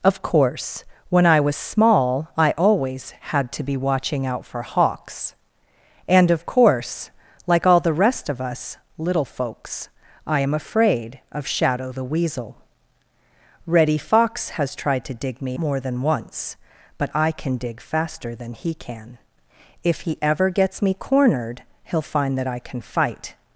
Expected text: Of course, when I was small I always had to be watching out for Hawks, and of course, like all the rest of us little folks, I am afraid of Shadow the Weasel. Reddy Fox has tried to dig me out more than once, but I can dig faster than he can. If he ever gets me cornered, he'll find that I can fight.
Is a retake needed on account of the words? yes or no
yes